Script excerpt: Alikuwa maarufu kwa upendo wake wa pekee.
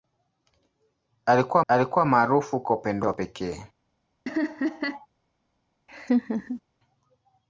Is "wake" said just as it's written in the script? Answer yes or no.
no